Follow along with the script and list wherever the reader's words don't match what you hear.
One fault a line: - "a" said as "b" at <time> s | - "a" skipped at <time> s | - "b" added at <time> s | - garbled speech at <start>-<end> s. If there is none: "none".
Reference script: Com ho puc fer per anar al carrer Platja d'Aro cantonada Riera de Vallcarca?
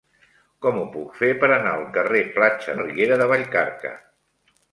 - "d'Aro cantonada" skipped at 2.8 s